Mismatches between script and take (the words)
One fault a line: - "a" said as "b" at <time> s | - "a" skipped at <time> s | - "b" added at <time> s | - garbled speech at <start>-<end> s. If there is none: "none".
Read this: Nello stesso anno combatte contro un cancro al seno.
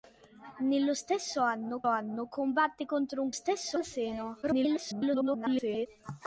- "anno" added at 1.9 s
- "cancro" said as "stesso" at 3.3 s
- garbled speech at 4.4-5.9 s